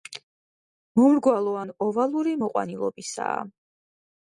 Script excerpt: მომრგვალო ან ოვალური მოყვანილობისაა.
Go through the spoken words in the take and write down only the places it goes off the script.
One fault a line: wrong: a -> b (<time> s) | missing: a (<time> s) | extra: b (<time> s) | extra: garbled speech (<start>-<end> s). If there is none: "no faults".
no faults